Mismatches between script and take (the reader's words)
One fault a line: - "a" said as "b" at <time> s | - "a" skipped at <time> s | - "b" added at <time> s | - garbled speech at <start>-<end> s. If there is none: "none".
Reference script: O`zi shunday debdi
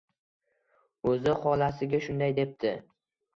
- "xolasiga" added at 1.4 s